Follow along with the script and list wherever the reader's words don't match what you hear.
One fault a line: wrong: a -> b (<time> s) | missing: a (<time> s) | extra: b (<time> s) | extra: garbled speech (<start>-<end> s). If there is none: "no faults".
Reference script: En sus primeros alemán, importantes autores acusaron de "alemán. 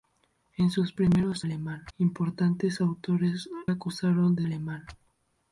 no faults